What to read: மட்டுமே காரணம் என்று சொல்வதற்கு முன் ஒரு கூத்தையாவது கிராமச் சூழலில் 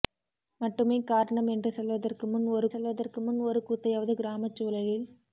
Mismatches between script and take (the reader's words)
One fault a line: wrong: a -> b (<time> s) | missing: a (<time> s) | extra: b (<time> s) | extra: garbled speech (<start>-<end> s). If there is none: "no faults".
extra: சொல்வதற்கு முன் ஒரு (2.7 s)